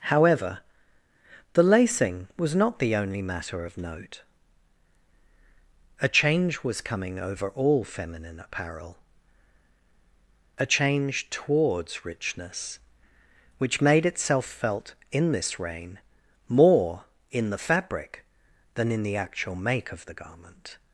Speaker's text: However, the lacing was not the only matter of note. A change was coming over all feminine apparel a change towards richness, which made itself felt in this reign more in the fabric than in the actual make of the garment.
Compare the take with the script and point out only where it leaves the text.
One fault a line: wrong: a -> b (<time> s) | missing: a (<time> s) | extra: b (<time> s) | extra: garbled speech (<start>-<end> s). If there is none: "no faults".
no faults